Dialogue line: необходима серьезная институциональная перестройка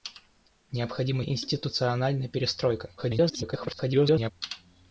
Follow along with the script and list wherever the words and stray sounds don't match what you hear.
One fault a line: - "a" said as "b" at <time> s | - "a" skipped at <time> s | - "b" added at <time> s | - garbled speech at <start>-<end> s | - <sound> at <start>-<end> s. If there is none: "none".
- "серьезная" skipped at 1.2 s
- garbled speech at 3.0-4.3 s